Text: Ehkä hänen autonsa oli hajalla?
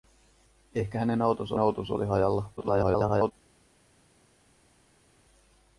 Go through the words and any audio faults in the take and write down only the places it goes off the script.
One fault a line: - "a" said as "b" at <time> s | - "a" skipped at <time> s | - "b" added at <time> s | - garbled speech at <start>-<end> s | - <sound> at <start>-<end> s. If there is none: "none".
- "autonsa" added at 1.6 s
- garbled speech at 2.6-3.3 s